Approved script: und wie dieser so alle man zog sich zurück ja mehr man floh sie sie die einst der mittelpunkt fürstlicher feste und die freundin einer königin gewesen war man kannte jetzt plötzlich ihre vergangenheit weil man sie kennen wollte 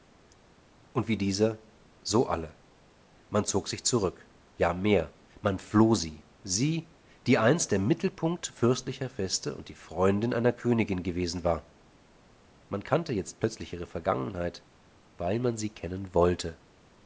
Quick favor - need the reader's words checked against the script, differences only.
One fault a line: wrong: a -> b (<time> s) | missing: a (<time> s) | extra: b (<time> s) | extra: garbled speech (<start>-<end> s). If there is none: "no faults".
no faults